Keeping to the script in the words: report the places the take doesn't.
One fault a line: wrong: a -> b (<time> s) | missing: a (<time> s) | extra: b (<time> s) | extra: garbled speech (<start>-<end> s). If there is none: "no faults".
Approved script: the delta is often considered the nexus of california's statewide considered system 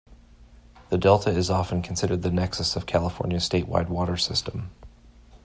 wrong: considered -> water (3.9 s)